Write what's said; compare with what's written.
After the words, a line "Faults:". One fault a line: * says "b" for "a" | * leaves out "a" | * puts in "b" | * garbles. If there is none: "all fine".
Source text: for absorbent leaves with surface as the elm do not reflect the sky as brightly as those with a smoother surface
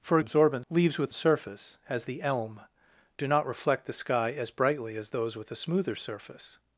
for absorbent leaves with surface as the elm do not reflect the sky as brightly as those with a smoother surface
Faults:
all fine